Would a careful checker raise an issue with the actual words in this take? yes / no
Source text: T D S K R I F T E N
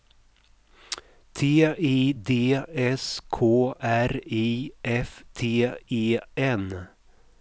yes